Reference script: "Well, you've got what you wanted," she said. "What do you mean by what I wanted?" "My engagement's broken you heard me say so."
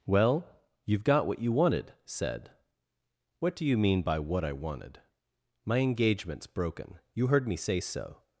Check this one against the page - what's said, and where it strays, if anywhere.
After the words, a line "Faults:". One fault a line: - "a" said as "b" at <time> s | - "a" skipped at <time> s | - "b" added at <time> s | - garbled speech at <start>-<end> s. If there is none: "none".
"Well, you've got what you wanted," said. "What do you mean by what I wanted?" "My engagement's broken you heard me say so."
Faults:
- "she" skipped at 1.9 s